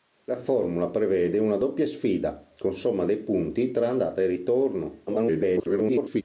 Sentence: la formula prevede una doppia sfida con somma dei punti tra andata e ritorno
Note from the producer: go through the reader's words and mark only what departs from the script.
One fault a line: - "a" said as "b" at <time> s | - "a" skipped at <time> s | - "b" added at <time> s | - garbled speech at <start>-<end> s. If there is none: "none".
- garbled speech at 5.1-6.2 s